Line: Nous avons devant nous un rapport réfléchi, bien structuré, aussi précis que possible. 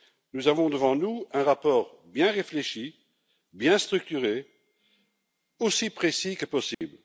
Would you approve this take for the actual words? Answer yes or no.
no